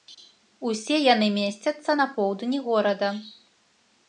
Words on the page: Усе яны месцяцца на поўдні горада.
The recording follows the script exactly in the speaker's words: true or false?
true